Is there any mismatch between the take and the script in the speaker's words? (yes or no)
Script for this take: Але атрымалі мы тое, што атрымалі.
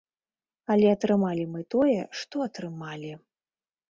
no